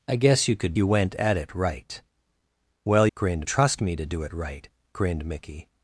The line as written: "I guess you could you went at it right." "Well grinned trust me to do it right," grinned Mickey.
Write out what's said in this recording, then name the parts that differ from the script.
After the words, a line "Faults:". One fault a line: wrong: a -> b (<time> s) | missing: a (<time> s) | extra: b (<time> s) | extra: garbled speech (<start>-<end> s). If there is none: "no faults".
"I guess you could you went at it right." "Well grinned trust me to do it right," grinned Mickey.
Faults:
no faults